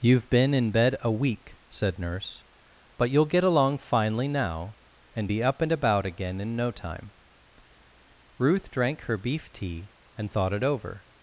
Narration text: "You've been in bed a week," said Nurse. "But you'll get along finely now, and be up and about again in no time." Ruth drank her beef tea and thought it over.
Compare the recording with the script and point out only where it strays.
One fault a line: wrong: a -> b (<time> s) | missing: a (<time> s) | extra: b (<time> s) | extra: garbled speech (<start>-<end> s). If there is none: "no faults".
no faults